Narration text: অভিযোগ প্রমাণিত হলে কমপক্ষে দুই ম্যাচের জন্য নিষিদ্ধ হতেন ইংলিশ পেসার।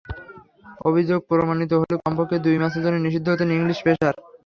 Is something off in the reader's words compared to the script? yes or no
no